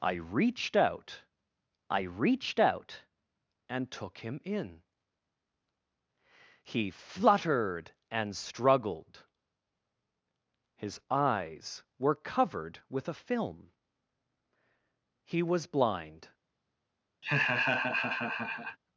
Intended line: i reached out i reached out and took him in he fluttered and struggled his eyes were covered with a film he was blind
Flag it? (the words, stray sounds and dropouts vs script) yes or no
yes